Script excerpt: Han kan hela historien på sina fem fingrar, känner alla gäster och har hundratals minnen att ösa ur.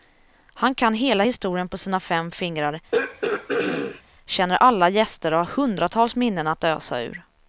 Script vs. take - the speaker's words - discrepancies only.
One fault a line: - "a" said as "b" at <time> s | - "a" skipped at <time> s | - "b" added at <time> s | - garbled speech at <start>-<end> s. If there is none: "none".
none